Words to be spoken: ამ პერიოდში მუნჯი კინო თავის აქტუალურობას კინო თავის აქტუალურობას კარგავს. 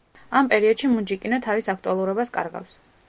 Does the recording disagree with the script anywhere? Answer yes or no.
yes